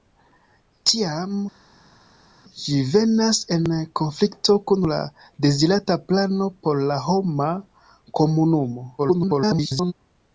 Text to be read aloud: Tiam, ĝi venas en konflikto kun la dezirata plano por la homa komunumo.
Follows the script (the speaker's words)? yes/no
no